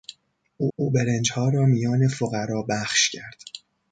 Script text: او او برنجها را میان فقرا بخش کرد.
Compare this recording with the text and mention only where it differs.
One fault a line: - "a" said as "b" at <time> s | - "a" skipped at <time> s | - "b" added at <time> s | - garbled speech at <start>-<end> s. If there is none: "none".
none